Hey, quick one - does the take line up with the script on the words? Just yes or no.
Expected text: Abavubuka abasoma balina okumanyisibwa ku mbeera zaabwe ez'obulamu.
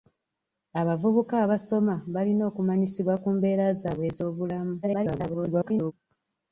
no